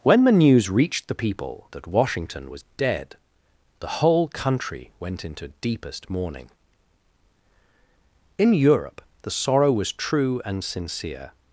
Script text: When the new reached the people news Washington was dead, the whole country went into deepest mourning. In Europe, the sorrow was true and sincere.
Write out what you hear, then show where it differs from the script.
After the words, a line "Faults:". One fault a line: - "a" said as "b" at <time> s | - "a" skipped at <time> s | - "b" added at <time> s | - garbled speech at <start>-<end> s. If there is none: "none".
When the news reached the people that Washington was dead, the whole country went into deepest mourning. In Europe, the sorrow was true and sincere.
Faults:
- "new" said as "news" at 0.3 s
- "news" said as "that" at 1.7 s